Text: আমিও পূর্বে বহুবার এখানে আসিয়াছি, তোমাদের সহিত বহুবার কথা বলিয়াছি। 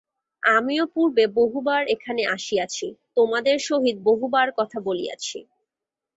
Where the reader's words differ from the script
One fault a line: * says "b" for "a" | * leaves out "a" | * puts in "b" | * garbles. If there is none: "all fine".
all fine